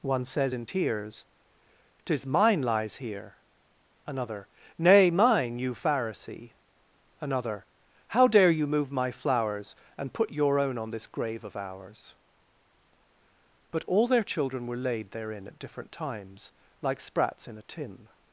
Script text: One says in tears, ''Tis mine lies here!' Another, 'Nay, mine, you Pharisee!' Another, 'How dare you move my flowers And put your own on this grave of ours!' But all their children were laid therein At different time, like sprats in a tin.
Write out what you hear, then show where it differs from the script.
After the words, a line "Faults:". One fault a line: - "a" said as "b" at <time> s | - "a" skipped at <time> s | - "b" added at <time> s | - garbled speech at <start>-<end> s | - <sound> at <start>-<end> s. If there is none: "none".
One says in tears, ''Tis mine lies here!' Another, 'Nay, mine, you Pharisee!' Another, 'How dare you move my flowers And put your own on this grave of ours!' But all their children were laid therein At different times, like sprats in a tin.
Faults:
- "time" said as "times" at 15.9 s